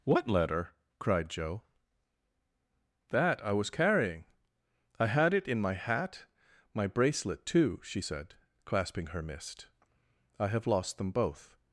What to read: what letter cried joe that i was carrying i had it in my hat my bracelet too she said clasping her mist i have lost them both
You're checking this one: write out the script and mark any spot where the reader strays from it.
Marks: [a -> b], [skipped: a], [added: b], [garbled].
what letter cried joe that i was carrying i had it in my hat my bracelet too she said clasping her mist i have lost them both